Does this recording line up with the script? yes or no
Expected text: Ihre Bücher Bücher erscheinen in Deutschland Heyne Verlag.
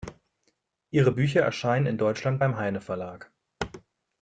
no